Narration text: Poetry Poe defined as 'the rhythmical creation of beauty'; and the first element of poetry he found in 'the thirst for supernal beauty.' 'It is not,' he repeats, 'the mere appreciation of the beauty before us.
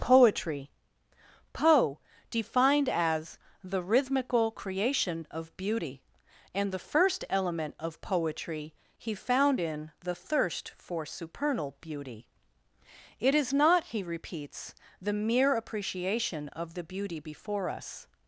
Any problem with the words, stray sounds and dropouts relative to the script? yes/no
no